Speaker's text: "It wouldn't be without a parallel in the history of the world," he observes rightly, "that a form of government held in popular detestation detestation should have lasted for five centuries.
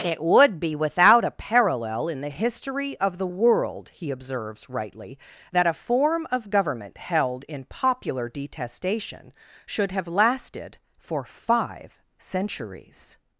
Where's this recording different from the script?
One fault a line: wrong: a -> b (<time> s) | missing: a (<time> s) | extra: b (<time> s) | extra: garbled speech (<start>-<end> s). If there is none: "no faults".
wrong: wouldn't -> would (0.2 s)
missing: detestation (9.3 s)